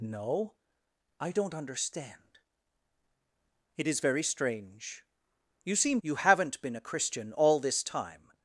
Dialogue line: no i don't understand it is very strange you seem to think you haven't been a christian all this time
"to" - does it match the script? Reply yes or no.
no